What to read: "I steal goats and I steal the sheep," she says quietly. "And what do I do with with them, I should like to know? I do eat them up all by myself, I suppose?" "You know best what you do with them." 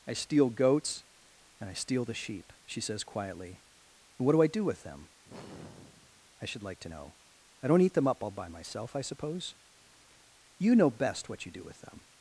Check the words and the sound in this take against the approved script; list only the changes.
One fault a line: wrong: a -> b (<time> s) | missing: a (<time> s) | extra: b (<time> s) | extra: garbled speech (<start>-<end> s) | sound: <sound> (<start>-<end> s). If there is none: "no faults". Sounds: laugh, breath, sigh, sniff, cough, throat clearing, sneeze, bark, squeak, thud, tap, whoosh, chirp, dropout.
missing: with (4.8 s)
sound: sigh (5.2-6.3 s)
wrong: do -> don't (7.7 s)